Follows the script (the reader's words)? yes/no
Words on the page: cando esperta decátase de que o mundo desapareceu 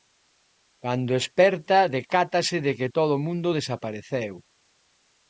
no